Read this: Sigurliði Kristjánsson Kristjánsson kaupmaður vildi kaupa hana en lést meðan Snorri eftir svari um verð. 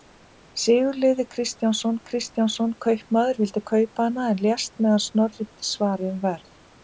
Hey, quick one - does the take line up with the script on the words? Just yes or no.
yes